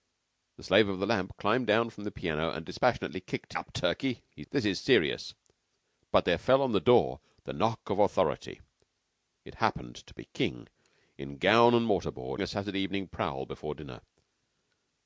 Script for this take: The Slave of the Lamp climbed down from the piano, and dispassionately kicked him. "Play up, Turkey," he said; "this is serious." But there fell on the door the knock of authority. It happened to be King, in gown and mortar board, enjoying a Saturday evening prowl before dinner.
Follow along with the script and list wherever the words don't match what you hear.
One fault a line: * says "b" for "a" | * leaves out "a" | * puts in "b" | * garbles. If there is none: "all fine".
* leaves out "him Play"
* leaves out "said"
* leaves out "enjoying"